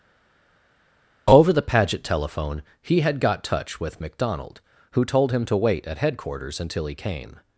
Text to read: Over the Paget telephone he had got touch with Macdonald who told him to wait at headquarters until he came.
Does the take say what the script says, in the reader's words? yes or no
yes